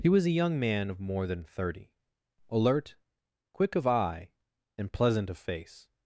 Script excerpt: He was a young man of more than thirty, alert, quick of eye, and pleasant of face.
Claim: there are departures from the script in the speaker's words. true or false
false